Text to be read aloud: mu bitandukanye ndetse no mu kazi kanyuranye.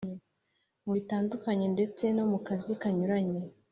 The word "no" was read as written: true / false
true